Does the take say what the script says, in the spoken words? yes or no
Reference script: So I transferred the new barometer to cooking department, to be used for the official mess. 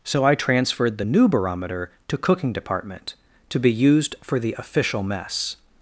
yes